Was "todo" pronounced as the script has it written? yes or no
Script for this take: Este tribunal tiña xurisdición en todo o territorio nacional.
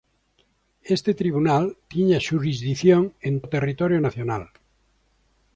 no